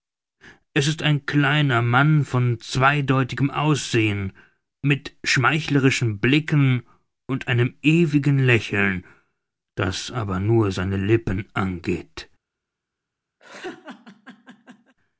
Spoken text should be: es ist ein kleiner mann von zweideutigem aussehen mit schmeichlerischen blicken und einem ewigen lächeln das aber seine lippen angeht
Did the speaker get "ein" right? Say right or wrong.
right